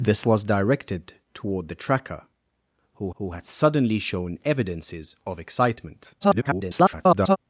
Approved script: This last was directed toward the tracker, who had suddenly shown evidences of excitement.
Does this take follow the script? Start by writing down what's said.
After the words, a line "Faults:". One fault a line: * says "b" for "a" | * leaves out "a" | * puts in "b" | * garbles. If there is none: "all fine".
This was directed toward the tracker, who who had suddenly shown evidences of excitement. [garbled]
Faults:
* leaves out "last"
* puts in "who"
* garbles